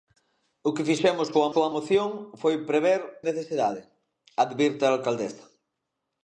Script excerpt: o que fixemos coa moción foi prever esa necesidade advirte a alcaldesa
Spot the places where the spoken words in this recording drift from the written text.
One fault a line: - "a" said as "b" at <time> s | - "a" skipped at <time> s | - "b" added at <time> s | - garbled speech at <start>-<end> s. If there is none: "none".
- "coa" added at 1.5 s
- "esa" skipped at 3.0 s